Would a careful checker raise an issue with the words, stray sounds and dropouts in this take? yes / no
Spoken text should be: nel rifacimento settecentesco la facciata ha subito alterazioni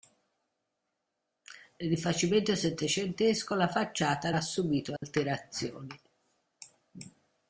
yes